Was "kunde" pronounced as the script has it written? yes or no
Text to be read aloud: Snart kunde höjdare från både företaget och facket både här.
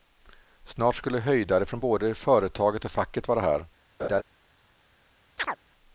no